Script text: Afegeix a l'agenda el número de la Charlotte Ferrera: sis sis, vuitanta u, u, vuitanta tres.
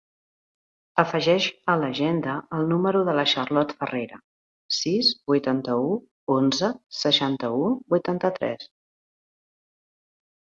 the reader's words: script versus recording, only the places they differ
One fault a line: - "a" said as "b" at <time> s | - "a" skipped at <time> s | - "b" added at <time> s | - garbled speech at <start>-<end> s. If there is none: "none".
- "sis" skipped at 5.1 s
- "onze seixanta" added at 6.4 s